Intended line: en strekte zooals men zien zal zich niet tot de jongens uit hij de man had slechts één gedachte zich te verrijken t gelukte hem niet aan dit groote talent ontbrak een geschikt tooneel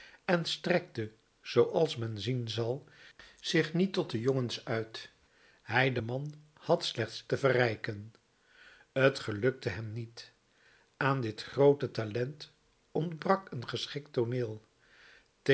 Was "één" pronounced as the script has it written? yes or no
no